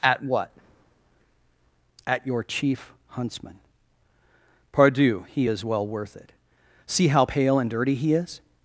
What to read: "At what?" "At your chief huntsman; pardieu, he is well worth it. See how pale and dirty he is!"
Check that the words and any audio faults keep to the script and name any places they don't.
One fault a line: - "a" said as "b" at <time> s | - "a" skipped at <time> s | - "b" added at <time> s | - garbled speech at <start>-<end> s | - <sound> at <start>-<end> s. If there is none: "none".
none